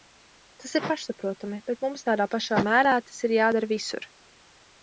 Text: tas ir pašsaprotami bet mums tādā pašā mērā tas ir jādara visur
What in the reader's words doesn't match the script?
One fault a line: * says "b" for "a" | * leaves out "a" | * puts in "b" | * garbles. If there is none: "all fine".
all fine